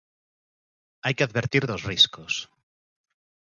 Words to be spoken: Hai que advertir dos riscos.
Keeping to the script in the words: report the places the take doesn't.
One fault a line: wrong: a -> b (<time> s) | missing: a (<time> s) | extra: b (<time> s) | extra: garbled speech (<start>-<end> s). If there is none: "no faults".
no faults